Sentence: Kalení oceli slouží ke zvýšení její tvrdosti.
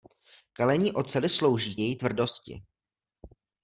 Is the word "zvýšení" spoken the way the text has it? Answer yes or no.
no